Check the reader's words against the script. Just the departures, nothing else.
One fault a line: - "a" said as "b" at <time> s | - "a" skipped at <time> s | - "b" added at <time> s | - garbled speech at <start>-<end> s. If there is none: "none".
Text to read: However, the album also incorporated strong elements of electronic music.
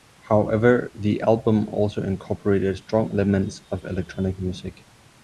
none